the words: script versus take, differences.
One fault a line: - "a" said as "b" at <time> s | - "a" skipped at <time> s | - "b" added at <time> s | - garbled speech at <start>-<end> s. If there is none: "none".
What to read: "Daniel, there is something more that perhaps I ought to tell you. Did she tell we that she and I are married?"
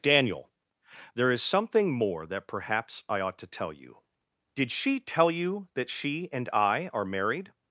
- "we" said as "you" at 5.3 s